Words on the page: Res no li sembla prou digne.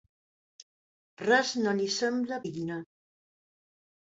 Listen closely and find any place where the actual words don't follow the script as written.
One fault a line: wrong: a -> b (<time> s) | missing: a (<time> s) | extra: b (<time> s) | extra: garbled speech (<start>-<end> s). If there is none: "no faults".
missing: prou (2.4 s)